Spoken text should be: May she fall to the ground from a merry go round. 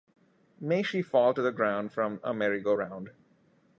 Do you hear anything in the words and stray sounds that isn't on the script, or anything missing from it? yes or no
no